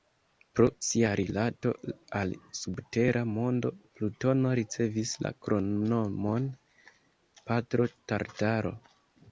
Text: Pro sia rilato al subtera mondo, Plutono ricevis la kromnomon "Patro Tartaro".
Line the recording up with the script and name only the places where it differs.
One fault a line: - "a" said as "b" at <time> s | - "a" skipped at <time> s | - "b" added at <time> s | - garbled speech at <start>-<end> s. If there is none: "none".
none